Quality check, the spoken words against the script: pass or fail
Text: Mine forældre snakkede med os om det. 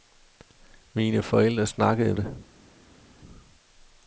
fail